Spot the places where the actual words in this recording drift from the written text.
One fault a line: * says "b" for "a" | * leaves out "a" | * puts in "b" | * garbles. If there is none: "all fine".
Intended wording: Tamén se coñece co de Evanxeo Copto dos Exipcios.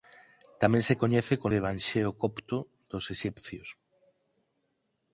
all fine